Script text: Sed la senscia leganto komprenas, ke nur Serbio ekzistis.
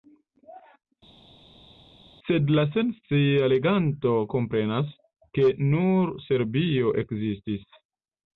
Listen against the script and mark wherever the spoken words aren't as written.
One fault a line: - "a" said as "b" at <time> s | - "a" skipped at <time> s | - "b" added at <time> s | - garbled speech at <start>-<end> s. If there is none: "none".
none